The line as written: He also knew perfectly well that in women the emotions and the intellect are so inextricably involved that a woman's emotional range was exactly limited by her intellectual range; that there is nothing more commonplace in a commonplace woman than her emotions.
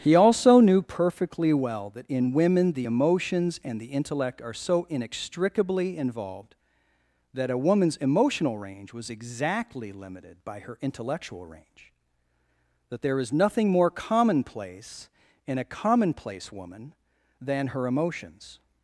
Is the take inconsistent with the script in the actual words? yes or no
no